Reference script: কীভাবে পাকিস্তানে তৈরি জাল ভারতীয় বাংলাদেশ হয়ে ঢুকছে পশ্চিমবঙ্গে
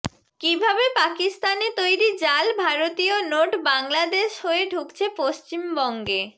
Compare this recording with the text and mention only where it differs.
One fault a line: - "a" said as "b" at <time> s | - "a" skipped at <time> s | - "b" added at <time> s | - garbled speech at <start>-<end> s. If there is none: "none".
- "নোট" added at 3.3 s